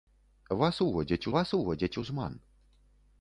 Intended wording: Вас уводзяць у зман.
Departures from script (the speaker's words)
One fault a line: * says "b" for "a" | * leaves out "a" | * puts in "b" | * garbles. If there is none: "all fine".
* puts in "вас уводзяць"